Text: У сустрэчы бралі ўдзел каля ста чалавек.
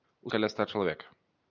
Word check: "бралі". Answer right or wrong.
wrong